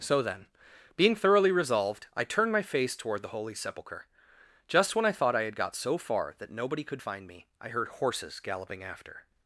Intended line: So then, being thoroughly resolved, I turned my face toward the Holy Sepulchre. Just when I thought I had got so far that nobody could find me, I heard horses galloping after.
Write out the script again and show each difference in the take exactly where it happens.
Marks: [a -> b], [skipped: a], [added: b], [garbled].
So then, being thoroughly resolved, I turned my face toward the Holy Sepulchre. Just when I thought I had got so far that nobody could find me, I heard horses galloping after.